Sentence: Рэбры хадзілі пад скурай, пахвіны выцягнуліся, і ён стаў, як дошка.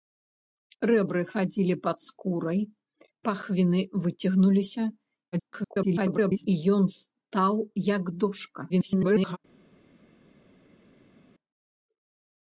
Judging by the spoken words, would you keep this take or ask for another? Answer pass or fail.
fail